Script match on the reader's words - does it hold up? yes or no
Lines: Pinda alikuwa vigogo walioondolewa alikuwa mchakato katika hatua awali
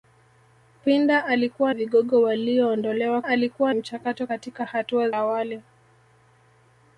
yes